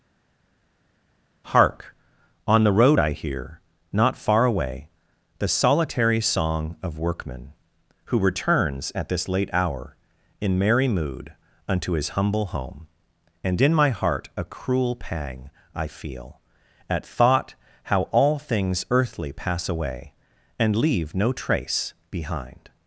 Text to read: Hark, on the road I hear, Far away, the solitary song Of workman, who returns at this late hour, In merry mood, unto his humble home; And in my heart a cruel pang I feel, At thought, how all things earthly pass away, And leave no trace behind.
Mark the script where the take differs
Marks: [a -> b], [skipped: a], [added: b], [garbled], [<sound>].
Hark, on the road I hear, [added: Not] Far away, the solitary song Of workman, who returns at this late hour, In merry mood, unto his humble home; And in my heart a cruel pang I feel, At thought, how all things earthly pass away, And leave no trace behind.